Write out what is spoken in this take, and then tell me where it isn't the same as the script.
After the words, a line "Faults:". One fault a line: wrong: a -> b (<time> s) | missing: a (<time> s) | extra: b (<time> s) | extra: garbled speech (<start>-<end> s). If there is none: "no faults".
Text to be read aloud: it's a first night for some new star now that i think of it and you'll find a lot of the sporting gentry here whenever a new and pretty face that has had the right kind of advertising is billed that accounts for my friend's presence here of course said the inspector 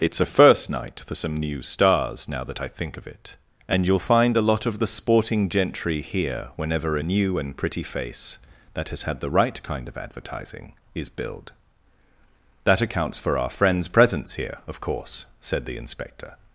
it's a first night for some new stars now that i think of it and you'll find a lot of the sporting gentry here whenever a new and pretty face that has had the right kind of advertising is billed that accounts for our friend's presence here of course said the inspector
Faults:
wrong: star -> stars (1.6 s)
wrong: my -> our (13.4 s)